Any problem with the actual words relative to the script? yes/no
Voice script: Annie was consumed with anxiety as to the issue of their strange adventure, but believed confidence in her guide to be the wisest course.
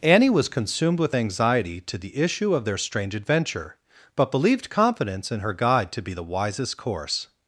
yes